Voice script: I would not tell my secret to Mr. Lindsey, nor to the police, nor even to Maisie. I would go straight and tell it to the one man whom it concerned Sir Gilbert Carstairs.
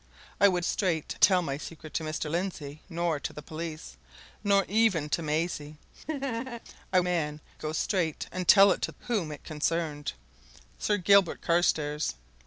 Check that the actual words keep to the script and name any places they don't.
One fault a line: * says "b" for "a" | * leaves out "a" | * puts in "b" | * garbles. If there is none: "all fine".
* says "straight" for "not"
* says "man" for "would"
* leaves out "the one man"